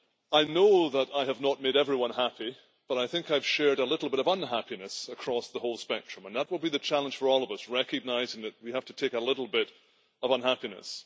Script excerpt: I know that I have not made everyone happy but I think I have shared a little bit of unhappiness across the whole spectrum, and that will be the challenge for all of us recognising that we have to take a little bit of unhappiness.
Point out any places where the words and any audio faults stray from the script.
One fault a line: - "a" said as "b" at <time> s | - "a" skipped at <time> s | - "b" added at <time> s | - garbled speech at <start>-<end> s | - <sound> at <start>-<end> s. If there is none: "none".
none